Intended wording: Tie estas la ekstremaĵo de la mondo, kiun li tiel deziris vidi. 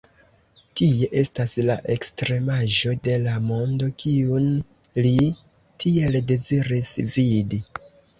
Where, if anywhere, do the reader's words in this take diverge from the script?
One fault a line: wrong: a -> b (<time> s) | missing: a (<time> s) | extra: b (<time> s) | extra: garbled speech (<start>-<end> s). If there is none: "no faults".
no faults